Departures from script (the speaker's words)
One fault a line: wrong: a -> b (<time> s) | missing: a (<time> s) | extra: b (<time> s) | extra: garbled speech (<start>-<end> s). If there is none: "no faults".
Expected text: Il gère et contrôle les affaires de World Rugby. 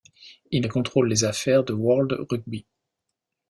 missing: gère (0.7 s)